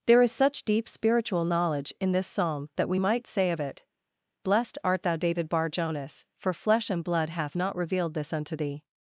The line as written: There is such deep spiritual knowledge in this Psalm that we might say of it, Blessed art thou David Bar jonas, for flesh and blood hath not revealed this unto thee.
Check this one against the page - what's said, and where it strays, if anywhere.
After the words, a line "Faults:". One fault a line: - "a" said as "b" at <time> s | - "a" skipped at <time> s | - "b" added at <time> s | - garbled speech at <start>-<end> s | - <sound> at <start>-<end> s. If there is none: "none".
There is such deep spiritual knowledge in this Psalm that we might say of it, Blessed art thou David Bar jonas, for flesh and blood hath not revealed this unto thee.
Faults:
none